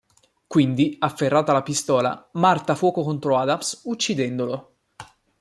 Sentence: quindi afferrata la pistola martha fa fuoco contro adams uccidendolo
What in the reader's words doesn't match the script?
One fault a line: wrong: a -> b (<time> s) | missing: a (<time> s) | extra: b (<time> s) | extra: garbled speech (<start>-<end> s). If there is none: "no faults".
missing: fa (2.7 s)